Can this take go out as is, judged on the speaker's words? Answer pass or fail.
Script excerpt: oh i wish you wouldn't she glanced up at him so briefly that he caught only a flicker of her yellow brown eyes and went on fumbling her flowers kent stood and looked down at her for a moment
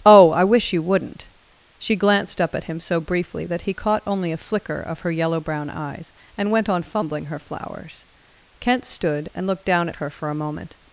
pass